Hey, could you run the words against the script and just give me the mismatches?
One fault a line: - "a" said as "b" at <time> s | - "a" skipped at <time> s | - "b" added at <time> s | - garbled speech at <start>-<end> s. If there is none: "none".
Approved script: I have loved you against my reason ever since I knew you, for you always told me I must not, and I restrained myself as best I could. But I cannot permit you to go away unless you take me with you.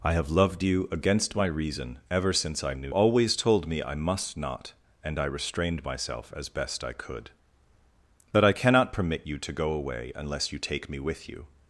- "you for you" skipped at 2.9 s